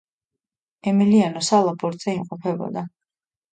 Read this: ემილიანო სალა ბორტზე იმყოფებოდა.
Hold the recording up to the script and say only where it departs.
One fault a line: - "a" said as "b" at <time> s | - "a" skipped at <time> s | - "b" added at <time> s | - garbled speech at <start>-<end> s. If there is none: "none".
none